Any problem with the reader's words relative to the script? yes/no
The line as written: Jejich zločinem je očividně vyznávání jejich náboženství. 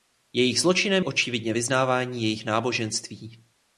yes